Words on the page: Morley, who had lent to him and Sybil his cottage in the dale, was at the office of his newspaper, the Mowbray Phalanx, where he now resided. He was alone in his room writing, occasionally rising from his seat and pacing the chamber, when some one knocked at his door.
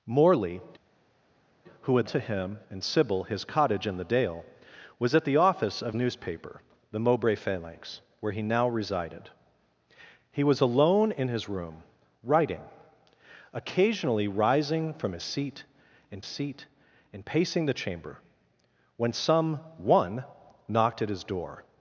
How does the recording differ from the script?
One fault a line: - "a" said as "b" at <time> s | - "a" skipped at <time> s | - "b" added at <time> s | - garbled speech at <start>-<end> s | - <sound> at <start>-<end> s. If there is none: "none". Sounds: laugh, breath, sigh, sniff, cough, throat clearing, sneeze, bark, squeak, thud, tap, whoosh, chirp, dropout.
- "lent" skipped at 2.1 s
- "his" skipped at 5.9 s
- "seat and" added at 16.2 s